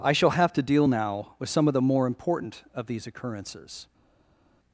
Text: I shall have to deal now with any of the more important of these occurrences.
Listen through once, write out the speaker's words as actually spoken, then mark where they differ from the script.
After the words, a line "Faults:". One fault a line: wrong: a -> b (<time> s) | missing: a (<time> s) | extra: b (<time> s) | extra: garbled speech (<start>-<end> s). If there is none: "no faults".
I shall have to deal now with some of the more important of these occurrences.
Faults:
wrong: any -> some (1.5 s)